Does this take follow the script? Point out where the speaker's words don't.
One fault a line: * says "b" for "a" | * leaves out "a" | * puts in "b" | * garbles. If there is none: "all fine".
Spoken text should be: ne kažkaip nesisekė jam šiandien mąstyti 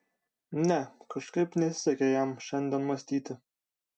all fine